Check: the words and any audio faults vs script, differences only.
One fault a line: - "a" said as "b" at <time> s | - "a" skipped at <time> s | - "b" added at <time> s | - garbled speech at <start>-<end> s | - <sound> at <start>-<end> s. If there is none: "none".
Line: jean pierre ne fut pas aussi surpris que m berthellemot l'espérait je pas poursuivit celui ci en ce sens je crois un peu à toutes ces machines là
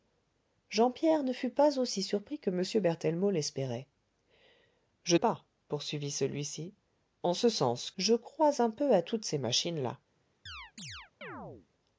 - chirp at 10.5-11.7 s